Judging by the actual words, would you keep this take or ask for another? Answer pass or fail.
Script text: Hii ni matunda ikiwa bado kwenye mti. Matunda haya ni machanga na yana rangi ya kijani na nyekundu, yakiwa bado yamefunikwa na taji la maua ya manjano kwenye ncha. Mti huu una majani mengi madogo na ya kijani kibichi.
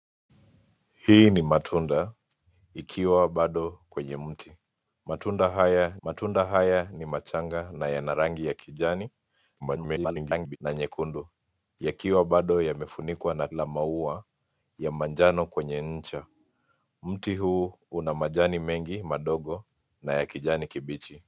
fail